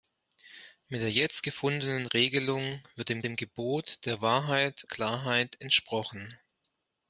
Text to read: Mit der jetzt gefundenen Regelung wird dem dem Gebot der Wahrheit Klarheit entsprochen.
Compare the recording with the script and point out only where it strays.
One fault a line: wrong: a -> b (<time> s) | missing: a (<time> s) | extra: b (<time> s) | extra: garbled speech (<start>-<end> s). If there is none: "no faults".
no faults